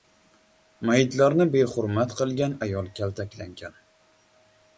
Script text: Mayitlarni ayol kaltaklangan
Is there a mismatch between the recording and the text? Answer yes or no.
yes